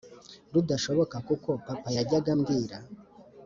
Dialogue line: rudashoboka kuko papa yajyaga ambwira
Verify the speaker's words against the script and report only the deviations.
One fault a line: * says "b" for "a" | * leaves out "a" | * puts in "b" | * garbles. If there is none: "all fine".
all fine